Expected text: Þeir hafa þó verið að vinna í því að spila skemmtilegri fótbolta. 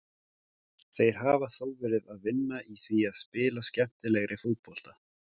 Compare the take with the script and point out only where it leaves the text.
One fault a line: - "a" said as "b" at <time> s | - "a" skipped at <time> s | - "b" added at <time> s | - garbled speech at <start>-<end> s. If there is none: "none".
none